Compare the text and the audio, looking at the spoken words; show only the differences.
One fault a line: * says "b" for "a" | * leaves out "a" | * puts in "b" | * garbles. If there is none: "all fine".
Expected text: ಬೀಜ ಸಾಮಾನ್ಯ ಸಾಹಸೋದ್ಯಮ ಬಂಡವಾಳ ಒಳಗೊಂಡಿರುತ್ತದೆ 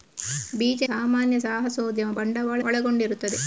all fine